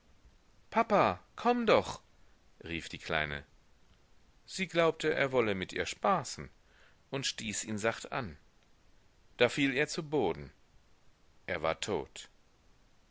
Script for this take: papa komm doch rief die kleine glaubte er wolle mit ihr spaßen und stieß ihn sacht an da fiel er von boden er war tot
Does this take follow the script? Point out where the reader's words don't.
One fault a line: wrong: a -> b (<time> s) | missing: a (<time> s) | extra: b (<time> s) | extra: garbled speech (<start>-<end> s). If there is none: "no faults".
extra: sie (4.5 s)
wrong: von -> zu (9.9 s)